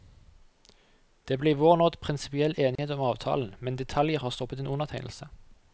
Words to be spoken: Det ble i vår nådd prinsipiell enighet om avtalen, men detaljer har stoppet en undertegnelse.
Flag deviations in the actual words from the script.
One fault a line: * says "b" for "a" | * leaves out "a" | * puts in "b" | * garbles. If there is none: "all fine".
all fine